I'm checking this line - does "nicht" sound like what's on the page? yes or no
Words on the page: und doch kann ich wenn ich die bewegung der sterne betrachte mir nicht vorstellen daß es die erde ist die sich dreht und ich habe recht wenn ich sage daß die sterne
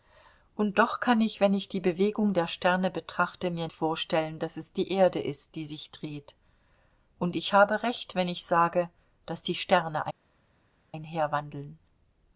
no